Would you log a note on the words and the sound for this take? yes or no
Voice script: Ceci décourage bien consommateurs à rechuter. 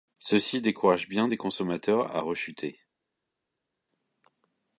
yes